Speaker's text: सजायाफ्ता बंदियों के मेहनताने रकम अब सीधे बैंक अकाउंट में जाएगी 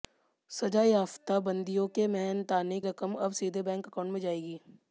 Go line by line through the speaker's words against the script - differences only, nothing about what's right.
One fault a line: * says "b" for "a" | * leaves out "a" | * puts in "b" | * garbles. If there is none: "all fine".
all fine